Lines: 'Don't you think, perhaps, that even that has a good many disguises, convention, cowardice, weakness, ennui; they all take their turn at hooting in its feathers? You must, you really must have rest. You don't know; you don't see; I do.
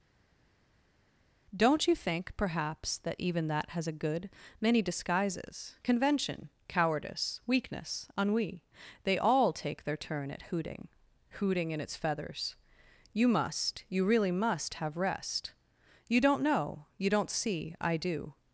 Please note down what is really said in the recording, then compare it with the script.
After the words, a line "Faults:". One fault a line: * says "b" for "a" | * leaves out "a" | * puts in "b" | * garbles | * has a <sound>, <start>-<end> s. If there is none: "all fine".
'Don't you think, perhaps, that even that has a good many disguises, convention, cowardice, weakness, ennui; they all take their turn at hooting hooting in its feathers? You must, you really must have rest. You don't know; you don't see; I do.
Faults:
* puts in "hooting"